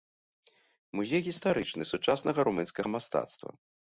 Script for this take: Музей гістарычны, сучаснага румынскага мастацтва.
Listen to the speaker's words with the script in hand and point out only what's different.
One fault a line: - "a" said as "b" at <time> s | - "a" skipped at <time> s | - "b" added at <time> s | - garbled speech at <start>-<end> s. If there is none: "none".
none